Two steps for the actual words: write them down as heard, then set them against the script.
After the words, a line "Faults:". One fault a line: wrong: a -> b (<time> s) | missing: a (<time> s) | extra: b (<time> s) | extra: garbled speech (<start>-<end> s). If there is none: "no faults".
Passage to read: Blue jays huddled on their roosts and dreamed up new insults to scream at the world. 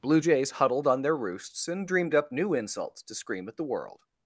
Blue jays huddled on their roosts and dreamed up new insults to scream at the world.
Faults:
no faults